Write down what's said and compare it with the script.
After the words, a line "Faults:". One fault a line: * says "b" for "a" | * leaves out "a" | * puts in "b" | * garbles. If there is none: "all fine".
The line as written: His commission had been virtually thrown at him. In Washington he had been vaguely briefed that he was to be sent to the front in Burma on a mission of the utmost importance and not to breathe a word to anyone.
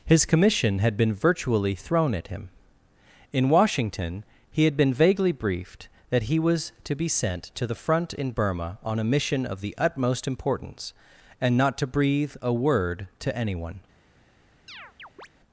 His commission had been virtually thrown at him. In Washington he had been vaguely briefed that he was to be sent to the front in Burma on a mission of the utmost importance and not to breathe a word to anyone.
Faults:
all fine